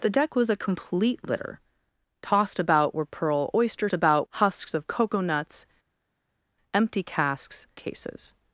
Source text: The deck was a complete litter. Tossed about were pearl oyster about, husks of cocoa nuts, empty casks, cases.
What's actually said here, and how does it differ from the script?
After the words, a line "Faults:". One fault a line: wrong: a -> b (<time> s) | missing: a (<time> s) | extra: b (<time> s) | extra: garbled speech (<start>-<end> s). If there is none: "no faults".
The deck was a complete litter. Tossed about were pearl oyster about, husks of cocoa nuts, empty casks, cases.
Faults:
no faults